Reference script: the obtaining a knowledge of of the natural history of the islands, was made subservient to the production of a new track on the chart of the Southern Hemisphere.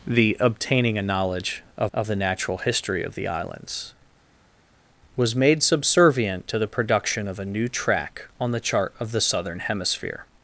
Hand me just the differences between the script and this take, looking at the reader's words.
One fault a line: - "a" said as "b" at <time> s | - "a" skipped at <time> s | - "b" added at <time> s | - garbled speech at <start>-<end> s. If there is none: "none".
none